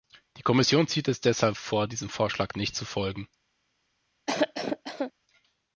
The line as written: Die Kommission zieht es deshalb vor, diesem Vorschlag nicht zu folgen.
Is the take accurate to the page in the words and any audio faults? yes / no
no